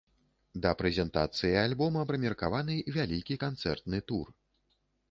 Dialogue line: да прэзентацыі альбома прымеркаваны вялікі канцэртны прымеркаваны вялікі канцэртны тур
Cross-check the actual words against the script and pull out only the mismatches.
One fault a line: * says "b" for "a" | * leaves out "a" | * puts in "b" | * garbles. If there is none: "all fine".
* leaves out "прымеркаваны вялікі канцэртны"